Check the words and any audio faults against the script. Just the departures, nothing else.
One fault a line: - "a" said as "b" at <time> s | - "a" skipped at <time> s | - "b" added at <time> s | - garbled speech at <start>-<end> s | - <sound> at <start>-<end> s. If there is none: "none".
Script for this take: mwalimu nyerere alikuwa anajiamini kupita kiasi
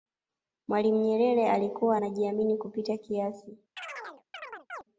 - chirp at 3.8-4.8 s